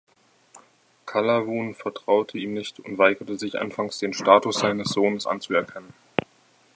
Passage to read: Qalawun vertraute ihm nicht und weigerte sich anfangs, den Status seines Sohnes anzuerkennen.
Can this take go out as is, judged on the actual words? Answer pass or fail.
pass